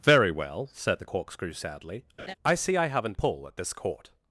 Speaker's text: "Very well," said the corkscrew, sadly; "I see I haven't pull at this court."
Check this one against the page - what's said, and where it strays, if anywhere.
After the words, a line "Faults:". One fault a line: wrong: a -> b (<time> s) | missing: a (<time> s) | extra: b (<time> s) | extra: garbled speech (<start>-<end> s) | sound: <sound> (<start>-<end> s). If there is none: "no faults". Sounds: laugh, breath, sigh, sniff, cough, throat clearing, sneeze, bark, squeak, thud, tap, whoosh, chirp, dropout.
"Very well," said the corkscrew, sadly; "I see I haven't pull at this court."
Faults:
sound: laugh (2.2-2.3 s)